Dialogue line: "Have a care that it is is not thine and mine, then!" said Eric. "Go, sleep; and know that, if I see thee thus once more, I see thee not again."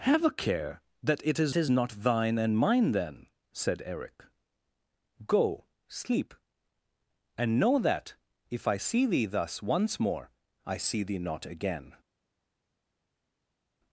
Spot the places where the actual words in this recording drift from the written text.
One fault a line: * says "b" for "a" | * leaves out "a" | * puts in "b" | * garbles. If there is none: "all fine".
all fine